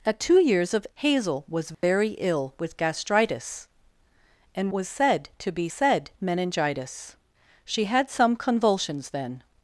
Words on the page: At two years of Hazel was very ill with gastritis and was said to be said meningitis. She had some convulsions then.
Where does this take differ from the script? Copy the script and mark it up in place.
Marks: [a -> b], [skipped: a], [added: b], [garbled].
At two years of Hazel was very ill with gastritis and was said to be said meningitis. She had some convulsions then.